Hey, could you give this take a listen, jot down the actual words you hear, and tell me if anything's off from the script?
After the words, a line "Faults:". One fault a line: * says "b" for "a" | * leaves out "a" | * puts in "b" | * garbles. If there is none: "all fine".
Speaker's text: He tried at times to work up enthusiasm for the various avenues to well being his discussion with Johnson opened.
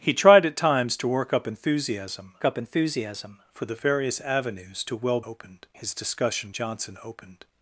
He tried at times to work up enthusiasm up enthusiasm for the various avenues to well opened his discussion Johnson opened.
Faults:
* puts in "up enthusiasm"
* says "opened" for "being"
* leaves out "with"